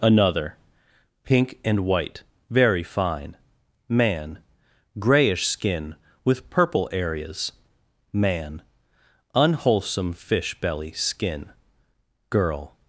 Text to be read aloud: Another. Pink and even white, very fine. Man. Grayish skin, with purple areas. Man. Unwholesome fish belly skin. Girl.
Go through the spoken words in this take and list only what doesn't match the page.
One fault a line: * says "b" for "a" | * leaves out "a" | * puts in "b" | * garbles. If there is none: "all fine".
* leaves out "even"